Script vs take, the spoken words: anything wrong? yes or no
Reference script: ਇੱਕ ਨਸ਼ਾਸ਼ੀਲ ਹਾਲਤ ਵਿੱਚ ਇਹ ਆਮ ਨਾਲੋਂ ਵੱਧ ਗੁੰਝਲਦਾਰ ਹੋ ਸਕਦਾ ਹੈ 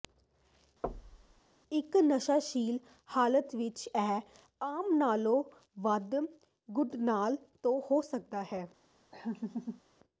no